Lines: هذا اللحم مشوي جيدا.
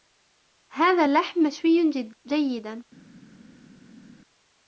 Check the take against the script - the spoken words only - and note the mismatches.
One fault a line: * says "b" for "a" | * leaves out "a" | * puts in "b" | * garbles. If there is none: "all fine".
all fine